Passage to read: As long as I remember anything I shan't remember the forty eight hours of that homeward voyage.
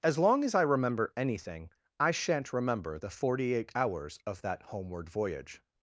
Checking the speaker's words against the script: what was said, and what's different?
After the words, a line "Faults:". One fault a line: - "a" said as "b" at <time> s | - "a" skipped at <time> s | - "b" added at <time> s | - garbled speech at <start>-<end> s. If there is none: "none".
As long as I remember anything I shan't remember the forty eight hours of that homeward voyage.
Faults:
none